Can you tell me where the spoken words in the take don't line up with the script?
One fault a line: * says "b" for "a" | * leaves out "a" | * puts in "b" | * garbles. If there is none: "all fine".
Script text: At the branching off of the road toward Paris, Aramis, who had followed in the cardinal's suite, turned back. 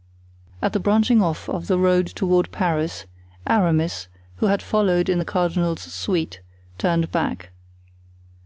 all fine